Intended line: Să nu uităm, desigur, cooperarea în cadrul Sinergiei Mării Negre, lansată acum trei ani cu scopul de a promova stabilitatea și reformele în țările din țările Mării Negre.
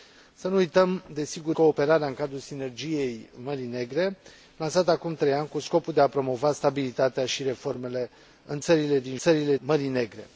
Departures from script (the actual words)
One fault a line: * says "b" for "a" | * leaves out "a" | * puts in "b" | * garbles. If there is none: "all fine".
all fine